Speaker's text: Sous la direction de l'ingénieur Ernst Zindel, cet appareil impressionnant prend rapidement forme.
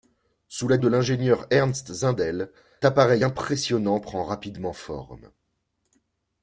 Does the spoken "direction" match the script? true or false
false